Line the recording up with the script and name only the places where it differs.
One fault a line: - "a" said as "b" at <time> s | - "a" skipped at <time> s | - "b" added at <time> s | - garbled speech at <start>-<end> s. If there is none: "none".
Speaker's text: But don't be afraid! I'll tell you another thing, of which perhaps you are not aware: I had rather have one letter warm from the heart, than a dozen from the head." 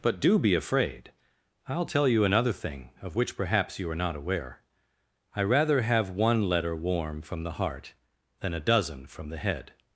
- "don't" said as "do" at 0.2 s
- "had" skipped at 5.4 s